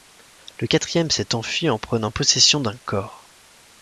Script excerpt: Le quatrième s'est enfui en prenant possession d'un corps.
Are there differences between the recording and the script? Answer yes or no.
no